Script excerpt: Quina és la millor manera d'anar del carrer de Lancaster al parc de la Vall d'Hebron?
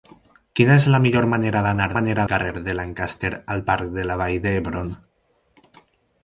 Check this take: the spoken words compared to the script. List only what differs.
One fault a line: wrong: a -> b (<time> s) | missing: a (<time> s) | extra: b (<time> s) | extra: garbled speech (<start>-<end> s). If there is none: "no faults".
wrong: del -> manera (1.9 s)